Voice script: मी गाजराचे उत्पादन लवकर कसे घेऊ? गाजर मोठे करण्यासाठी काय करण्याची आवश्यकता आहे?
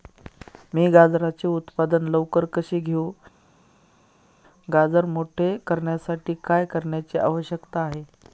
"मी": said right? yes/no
yes